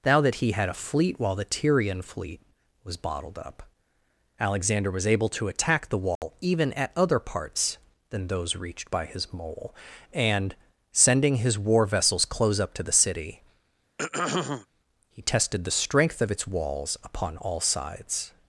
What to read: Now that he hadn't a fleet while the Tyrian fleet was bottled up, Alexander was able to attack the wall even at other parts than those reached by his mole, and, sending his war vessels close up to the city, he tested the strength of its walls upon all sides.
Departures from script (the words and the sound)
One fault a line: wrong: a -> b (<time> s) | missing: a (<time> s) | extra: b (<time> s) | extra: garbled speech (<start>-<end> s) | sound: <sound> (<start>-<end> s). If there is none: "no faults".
wrong: hadn't -> had (0.5 s)
sound: dropout (6.2-6.2 s)
sound: throat clearing (14.0-14.7 s)